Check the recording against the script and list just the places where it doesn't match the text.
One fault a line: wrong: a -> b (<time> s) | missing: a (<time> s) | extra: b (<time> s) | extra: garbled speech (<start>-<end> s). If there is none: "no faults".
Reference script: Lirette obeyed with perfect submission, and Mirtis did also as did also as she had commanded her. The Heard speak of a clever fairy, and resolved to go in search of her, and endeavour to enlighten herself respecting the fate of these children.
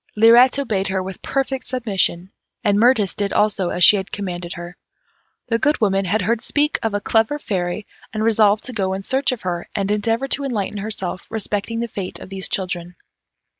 extra: her (0.9 s)
missing: did also as (3.8 s)
extra: Good Woman had (5.6 s)